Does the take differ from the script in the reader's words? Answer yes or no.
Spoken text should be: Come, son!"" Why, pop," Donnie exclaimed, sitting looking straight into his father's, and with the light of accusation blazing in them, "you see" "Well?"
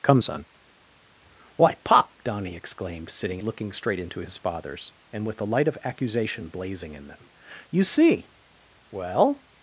no